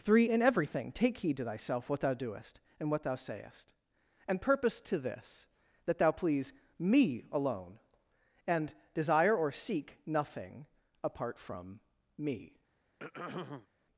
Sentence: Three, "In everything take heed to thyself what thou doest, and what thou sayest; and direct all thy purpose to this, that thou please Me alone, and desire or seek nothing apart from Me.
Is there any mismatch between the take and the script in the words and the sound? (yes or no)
yes